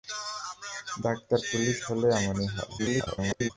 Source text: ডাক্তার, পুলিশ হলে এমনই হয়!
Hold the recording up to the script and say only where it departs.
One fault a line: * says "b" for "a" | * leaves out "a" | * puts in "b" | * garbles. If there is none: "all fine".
* garbles